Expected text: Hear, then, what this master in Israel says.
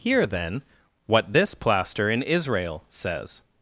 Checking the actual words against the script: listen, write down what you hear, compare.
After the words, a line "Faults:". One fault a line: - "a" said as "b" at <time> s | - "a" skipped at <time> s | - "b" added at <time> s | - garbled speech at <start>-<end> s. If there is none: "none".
Hear, then, what this plaster in Israel says.
Faults:
- "master" said as "plaster" at 1.6 s